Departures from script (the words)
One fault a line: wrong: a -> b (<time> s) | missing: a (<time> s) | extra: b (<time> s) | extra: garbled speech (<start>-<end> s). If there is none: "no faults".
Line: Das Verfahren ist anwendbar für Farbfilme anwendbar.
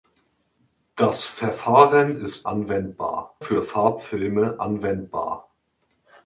no faults